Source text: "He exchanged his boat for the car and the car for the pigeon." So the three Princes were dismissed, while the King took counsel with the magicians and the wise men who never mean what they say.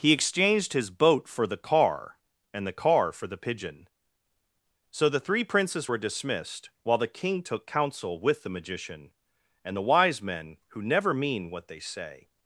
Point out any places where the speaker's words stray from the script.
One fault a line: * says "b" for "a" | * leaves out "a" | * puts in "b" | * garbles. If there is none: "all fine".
* says "magician" for "magicians"